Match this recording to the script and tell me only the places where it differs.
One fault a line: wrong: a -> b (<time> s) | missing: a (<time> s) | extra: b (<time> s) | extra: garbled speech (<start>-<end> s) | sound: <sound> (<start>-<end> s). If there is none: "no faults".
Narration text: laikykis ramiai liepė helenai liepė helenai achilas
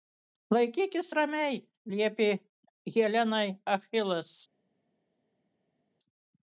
missing: liepė helenai (3.4 s)